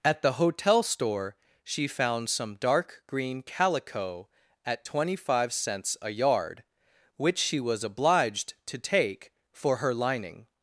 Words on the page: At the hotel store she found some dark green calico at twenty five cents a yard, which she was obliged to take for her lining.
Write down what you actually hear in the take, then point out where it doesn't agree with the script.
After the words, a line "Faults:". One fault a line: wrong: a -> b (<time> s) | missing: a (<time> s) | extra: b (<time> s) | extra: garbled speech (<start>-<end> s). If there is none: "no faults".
At the hotel store she found some dark green calico at twenty five cents a yard, which she was obliged to take for her lining.
Faults:
no faults